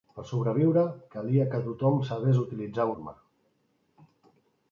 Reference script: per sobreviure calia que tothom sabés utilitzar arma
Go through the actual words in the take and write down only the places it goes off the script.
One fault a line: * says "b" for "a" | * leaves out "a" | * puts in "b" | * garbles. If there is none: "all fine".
all fine